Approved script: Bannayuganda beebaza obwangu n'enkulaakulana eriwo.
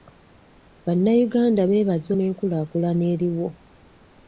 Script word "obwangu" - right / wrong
wrong